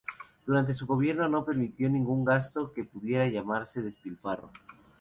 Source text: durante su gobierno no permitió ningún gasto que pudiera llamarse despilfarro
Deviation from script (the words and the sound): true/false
false